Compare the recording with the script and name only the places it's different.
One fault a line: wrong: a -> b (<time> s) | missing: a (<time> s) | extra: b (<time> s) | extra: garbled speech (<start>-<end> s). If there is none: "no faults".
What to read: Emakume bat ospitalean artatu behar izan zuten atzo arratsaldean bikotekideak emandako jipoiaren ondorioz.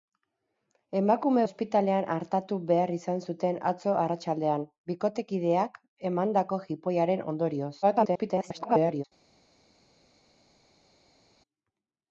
missing: bat (1.4 s)
extra: garbled speech (7.8-9.0 s)